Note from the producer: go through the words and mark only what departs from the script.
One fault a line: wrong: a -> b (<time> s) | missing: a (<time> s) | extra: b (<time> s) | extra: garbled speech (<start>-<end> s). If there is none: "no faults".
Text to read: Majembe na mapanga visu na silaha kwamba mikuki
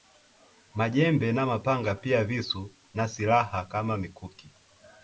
extra: pia (1.9 s)
wrong: kwamba -> kama (3.6 s)